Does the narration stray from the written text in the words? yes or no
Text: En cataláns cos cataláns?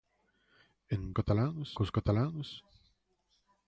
no